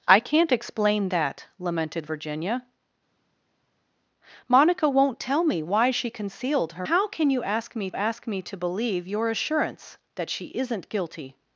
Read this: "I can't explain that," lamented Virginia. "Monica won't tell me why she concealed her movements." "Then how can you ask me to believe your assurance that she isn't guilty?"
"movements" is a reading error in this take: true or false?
true